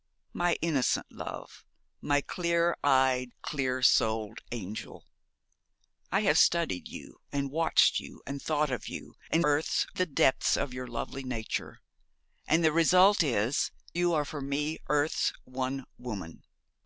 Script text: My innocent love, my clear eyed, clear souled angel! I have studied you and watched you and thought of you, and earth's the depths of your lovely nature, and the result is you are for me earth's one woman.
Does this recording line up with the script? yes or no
yes